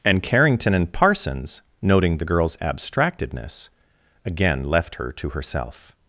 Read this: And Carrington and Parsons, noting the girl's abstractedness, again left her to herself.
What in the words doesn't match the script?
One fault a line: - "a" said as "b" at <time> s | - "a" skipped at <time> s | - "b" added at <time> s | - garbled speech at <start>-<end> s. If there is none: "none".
none